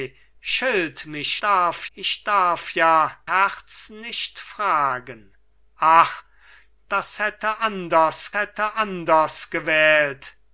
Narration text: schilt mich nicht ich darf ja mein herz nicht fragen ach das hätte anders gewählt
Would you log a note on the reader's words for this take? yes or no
yes